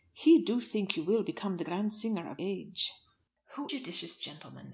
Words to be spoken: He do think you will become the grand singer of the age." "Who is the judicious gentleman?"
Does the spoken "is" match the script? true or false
false